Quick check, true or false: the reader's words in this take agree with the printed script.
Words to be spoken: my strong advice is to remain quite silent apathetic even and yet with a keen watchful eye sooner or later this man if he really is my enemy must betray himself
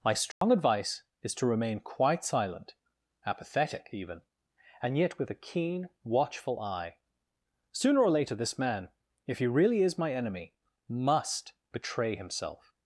true